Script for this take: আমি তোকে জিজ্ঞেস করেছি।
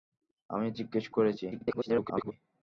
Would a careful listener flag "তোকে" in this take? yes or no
yes